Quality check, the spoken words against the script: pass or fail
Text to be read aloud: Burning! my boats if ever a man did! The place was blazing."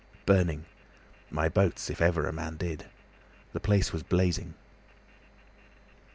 pass